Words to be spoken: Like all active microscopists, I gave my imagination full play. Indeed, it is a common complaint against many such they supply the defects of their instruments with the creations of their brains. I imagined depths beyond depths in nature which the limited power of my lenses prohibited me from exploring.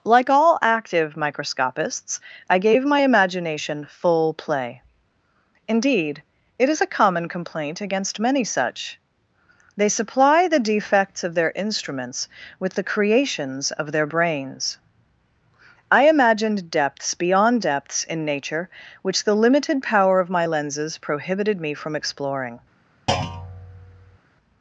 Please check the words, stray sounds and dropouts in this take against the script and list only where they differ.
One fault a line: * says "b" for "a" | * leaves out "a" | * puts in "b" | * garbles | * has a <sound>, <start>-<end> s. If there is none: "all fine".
* has a thud, 23.1-24.2 s